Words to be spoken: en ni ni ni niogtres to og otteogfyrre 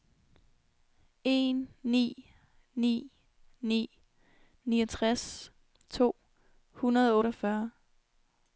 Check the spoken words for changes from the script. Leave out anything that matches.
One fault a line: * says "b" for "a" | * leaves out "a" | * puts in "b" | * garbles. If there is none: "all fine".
* puts in "hundrede"